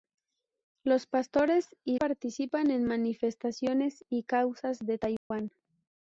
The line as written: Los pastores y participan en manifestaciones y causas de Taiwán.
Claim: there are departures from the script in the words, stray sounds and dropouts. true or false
true